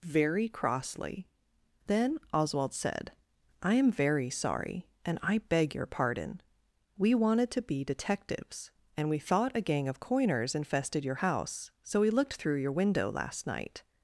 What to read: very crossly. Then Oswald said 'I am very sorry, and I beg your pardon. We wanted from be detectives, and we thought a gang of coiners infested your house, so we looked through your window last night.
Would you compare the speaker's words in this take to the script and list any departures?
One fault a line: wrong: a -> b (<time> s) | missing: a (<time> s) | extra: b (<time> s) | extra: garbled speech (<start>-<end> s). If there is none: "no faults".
wrong: from -> to (7.5 s)